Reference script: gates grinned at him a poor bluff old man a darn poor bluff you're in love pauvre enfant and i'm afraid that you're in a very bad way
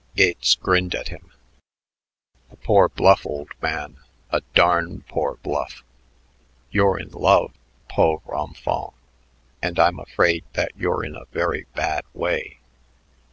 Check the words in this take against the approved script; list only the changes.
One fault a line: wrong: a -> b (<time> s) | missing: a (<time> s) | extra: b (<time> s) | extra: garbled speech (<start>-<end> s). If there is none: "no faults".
no faults